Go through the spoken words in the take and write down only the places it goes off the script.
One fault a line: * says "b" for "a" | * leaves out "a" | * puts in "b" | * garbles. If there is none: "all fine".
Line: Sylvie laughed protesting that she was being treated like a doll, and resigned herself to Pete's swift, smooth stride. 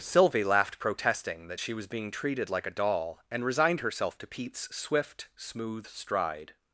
all fine